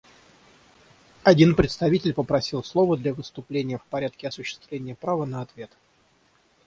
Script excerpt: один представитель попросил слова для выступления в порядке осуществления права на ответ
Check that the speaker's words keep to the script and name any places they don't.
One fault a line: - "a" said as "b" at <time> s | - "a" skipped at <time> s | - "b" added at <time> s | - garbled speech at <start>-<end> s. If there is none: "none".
none